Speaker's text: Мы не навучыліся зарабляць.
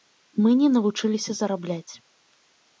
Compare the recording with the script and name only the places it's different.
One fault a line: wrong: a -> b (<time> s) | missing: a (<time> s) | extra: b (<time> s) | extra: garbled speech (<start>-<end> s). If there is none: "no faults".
no faults